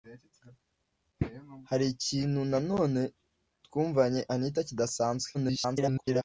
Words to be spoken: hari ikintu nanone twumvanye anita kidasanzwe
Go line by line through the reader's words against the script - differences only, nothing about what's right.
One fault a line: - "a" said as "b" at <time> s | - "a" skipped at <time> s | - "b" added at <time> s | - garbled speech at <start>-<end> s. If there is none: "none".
- garbled speech at 5.3-6.2 s